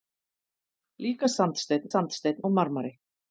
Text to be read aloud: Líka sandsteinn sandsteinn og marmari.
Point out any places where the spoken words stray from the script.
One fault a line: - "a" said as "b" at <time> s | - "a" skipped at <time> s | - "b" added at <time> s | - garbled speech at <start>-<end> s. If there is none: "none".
none